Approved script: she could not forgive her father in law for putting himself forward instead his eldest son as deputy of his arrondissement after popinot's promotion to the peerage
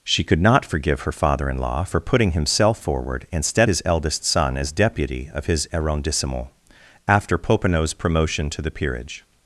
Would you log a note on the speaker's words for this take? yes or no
no